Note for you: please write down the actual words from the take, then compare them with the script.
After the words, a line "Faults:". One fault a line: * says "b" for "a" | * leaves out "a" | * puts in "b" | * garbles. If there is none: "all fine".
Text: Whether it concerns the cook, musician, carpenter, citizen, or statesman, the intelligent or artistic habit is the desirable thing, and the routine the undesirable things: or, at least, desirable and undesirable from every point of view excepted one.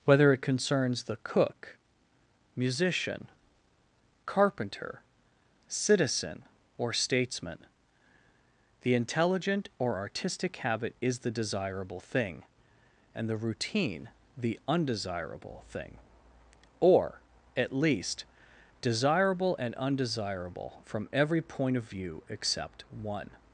Whether it concerns the cook, musician, carpenter, citizen, or statesman, the intelligent or artistic habit is the desirable thing, and the routine the undesirable thing: or, at least, desirable and undesirable from every point of view except one.
Faults:
* says "thing" for "things"
* says "except" for "excepted"